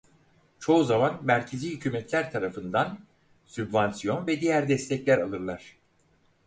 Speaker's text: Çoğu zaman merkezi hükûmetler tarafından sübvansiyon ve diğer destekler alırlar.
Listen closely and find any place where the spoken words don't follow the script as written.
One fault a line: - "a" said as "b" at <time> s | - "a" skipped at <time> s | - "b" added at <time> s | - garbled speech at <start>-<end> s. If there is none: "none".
none